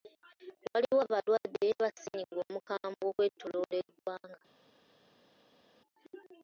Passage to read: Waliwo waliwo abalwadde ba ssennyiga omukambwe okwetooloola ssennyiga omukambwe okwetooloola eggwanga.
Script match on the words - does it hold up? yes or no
no